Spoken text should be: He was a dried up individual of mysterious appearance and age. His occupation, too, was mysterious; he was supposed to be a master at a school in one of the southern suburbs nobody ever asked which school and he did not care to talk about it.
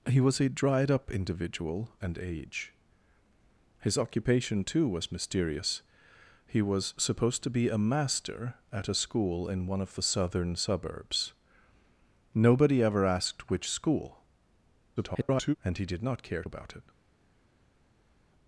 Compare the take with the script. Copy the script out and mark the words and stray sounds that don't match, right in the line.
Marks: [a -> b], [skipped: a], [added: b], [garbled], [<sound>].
He was a dried up individual [skipped: of mysterious appearance] and age. His occupation, too, was mysterious; he was supposed to be a master at a school in one of the southern suburbs nobody ever asked which school [garbled] and he did not care [skipped: to talk] about it.